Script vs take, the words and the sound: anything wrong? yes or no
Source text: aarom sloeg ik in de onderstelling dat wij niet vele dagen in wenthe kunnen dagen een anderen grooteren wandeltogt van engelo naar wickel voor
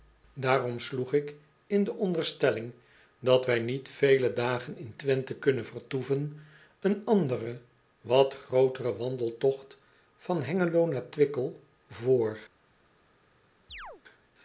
yes